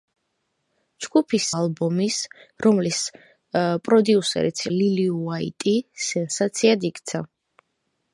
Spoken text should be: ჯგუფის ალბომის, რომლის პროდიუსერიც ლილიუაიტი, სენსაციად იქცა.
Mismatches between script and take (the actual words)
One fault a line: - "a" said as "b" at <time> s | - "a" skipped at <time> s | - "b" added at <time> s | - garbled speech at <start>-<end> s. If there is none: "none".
none